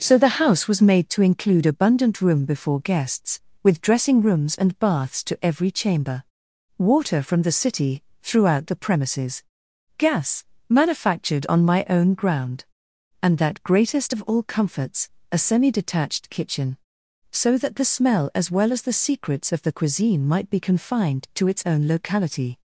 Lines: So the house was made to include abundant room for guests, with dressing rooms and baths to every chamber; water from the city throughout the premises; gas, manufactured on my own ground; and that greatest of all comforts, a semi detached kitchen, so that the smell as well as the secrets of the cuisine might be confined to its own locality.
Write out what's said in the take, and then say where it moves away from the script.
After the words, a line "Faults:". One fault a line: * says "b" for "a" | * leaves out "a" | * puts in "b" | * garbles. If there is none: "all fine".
So the house was made to include abundant room before guests, with dressing rooms and baths to every chamber; water from the city throughout the premises; gas, manufactured on my own ground; and that greatest of all comforts, a semi detached kitchen, so that the smell as well as the secrets of the cuisine might be confined to its own locality.
Faults:
* says "before" for "for"